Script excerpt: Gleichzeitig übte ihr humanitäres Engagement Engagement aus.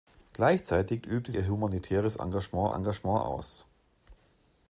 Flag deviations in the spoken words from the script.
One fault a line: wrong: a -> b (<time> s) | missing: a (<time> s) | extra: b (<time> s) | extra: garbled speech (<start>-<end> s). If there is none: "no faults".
no faults